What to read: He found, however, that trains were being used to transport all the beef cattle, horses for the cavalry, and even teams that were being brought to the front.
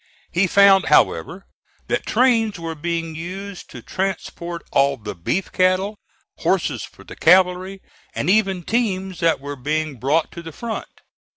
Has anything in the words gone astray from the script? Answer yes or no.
no